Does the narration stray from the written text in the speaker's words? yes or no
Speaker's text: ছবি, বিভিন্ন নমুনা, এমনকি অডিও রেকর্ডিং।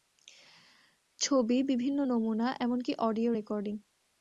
no